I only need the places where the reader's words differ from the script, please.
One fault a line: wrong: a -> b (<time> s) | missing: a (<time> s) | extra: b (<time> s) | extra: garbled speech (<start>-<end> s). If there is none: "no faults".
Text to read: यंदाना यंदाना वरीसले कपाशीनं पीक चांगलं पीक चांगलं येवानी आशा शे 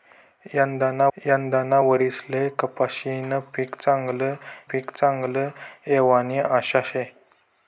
no faults